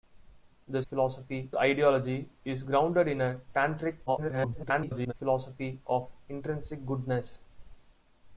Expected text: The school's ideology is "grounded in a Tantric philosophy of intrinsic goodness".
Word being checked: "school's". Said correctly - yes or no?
no